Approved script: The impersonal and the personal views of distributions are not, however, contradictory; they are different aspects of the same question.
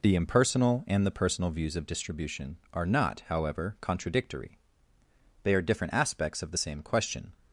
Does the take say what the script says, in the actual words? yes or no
no